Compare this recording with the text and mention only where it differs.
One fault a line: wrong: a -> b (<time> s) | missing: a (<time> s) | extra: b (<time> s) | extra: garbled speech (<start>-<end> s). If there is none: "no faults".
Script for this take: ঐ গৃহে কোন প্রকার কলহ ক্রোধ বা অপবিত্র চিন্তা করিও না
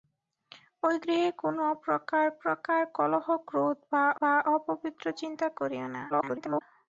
extra: প্রকার (2.4 s)
extra: বা (4.2 s)
extra: garbled speech (6.1-6.6 s)